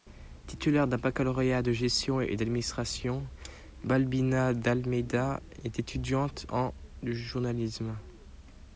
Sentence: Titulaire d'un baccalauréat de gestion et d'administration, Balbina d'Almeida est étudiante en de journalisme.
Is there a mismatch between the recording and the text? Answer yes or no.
no